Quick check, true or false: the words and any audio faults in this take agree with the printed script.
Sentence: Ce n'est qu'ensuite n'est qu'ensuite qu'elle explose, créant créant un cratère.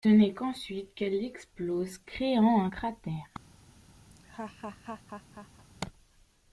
false